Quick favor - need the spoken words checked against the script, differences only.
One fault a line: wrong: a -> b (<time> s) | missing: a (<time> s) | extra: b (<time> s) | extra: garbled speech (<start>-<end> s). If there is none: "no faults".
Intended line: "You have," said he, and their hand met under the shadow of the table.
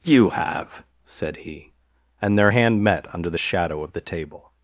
no faults